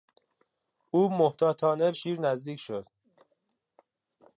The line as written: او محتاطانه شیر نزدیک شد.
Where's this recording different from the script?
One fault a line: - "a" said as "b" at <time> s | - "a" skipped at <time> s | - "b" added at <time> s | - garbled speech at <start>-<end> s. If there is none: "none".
none